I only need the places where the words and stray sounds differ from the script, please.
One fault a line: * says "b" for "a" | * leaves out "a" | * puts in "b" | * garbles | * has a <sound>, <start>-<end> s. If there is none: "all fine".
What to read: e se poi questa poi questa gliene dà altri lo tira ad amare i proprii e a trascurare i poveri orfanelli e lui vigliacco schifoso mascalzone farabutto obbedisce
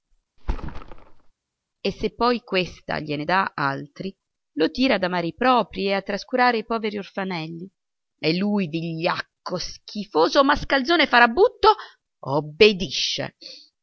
* has a thud, 0.4-1.3 s
* leaves out "poi questa"